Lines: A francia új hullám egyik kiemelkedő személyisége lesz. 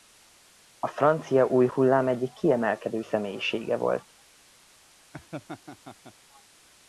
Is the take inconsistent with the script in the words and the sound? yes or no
yes